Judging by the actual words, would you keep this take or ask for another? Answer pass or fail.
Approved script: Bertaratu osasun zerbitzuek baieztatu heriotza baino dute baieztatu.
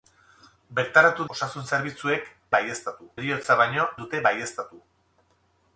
pass